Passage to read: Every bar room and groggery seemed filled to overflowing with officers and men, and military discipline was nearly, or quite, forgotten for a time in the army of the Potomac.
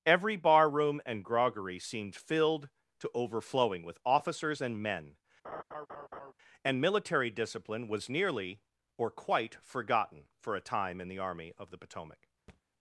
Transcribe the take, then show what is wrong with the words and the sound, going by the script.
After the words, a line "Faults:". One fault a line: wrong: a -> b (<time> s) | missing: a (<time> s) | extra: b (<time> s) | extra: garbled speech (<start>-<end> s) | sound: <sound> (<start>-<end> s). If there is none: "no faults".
Every bar room and groggery seemed filled to overflowing with officers and men, and military discipline was nearly, or quite, forgotten for a time in the army of the Potomac.
Faults:
sound: laugh (5.4-6.3 s)
sound: thud (12.5-12.6 s)